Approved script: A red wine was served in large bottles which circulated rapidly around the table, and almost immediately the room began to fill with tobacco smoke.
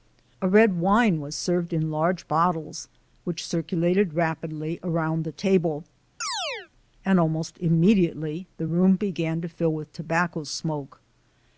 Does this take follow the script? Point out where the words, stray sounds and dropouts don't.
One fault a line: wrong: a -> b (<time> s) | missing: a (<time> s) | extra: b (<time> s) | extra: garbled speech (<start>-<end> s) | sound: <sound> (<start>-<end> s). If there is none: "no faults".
sound: chirp (6.2-6.7 s)